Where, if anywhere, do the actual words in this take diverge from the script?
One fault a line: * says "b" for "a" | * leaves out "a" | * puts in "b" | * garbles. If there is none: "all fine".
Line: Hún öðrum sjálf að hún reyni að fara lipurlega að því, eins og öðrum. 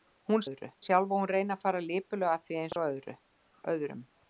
all fine